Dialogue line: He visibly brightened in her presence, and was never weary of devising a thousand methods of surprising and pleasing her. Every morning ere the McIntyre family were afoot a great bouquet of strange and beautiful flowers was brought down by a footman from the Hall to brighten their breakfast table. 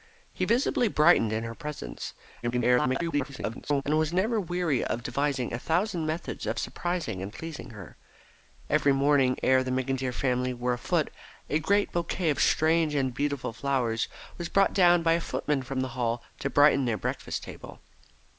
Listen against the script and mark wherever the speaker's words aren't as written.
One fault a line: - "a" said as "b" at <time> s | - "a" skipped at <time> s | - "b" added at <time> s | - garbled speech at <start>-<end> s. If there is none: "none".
- garbled speech at 2.4-3.8 s